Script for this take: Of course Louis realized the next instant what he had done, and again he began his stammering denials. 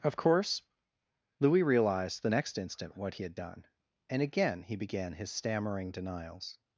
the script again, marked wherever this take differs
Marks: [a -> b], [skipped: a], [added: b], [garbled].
Of course Louis realized the next instant what he had done, and again he began his stammering denials.